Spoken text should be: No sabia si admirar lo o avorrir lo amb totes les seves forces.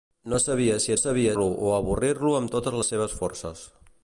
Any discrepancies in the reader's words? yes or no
yes